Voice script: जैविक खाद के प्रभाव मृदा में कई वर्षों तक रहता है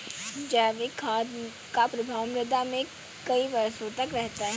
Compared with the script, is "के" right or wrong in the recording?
wrong